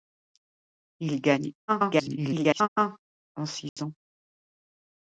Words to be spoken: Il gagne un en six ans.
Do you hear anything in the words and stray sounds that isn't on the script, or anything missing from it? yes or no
yes